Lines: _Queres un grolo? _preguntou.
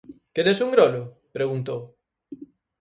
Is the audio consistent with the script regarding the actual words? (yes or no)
yes